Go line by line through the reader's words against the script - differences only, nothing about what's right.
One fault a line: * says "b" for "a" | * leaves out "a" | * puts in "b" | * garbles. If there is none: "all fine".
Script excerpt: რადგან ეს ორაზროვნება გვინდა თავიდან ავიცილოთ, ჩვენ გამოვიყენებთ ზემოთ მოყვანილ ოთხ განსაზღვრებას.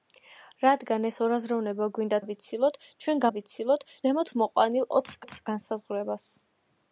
* leaves out "თავიდან"
* says "ავიცილოთ" for "გამოვიყენებთ"
* puts in "ოთხ"